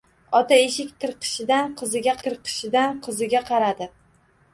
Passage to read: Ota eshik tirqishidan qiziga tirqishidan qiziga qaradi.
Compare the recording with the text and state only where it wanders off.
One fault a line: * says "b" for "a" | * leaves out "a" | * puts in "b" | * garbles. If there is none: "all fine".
all fine